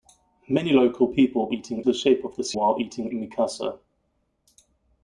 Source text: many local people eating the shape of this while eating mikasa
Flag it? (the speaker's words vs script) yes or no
no